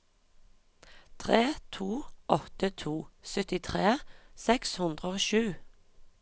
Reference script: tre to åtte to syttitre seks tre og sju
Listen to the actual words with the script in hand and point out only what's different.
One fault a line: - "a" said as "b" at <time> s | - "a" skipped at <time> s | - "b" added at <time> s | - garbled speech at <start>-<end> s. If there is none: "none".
- "tre" said as "hundre" at 4.8 s